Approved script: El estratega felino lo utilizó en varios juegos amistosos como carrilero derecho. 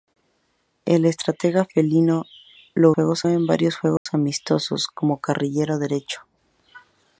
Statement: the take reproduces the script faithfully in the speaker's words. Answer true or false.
false